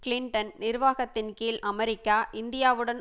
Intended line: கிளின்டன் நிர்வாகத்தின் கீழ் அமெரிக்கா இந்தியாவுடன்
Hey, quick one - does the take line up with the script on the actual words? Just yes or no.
yes